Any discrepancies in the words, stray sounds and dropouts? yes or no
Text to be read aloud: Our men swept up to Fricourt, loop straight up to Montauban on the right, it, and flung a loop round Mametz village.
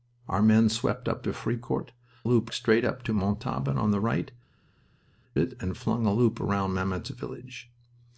no